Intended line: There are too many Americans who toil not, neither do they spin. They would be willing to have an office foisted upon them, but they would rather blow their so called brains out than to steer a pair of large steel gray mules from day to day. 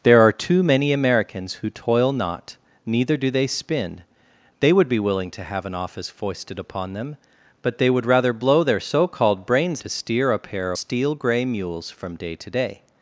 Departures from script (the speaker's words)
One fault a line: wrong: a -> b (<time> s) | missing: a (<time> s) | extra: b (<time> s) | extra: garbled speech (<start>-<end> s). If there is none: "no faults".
missing: out than (9.8 s)
missing: of large (10.7 s)